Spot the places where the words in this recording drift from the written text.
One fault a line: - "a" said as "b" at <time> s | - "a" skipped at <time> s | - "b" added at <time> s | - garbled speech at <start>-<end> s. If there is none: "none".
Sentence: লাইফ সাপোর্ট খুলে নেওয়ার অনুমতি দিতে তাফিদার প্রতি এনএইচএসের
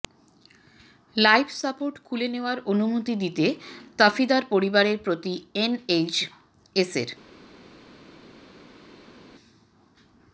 - "পরিবারের" added at 4.5 s